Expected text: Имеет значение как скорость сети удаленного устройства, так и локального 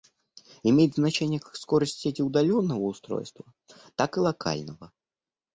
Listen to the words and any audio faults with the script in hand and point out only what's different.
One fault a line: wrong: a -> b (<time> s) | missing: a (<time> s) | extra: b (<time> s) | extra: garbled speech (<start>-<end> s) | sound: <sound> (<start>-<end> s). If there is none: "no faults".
no faults